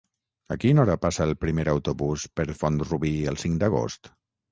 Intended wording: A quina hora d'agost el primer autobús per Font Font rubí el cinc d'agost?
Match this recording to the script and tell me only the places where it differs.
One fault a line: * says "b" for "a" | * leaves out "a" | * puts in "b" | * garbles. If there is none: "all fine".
* says "passa" for "d'agost"
* leaves out "Font"